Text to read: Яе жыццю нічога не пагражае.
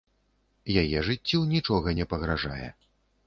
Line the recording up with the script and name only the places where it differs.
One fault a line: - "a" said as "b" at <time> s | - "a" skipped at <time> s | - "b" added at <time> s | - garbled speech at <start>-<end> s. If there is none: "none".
none